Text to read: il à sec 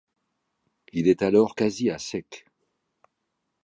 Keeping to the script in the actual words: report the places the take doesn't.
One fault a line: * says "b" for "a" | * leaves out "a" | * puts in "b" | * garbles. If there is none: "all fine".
* puts in "est alors quasi"